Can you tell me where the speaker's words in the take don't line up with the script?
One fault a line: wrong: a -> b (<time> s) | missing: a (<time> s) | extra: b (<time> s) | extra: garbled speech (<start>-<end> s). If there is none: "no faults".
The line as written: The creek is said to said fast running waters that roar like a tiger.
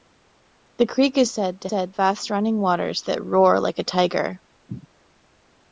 no faults